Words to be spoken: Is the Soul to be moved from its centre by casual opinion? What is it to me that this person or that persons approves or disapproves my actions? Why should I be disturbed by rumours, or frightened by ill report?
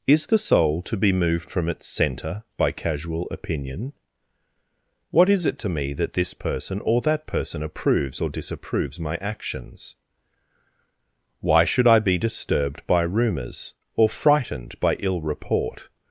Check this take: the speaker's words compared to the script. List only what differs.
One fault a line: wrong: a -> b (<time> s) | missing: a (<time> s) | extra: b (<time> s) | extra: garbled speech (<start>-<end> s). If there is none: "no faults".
wrong: persons -> person (7.3 s)